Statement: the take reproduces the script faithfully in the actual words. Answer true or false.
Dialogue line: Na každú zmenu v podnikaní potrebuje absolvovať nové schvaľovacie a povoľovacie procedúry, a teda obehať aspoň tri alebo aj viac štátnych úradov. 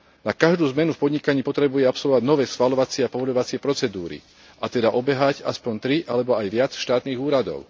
true